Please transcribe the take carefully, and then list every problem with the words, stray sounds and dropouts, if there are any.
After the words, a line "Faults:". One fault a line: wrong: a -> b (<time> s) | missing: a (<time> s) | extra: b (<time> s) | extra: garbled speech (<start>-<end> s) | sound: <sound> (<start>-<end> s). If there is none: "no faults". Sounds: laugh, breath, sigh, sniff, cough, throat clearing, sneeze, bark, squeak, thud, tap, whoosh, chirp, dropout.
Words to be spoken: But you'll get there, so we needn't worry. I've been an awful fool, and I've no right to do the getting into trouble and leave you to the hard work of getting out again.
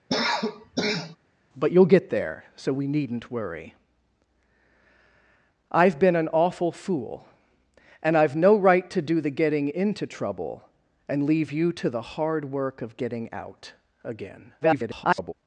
But you'll get there, so we needn't worry. I've been an awful fool, and I've no right to do the getting into trouble and leave you to the hard work of getting out again. [garbled]
Faults:
sound: cough (0.1-1.2 s)
extra: garbled speech (14.6-15.3 s)